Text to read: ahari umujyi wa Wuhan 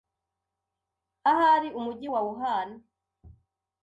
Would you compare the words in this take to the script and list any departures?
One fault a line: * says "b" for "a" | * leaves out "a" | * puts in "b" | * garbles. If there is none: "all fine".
all fine